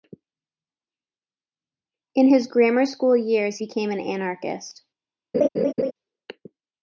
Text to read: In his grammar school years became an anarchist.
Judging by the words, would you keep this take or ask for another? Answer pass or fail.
pass